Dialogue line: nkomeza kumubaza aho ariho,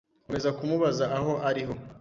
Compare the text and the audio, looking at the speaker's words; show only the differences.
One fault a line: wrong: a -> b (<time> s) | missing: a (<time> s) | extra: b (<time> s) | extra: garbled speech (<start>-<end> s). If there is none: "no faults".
no faults